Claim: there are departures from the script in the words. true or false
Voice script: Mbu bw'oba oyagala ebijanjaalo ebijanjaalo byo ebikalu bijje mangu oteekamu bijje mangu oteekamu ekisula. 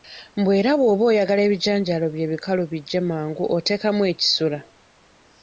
true